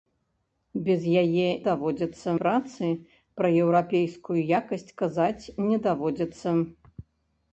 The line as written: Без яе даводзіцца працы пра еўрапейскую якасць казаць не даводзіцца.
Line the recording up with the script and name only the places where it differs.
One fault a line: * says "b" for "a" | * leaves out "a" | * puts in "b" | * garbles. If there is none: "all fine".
all fine